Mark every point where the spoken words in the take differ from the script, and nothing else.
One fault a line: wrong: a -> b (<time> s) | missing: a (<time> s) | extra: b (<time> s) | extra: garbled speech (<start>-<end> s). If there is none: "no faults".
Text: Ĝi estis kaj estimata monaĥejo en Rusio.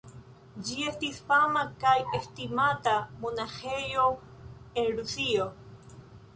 extra: fama (1.3 s)